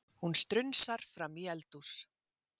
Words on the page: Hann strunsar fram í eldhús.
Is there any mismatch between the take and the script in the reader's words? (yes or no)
yes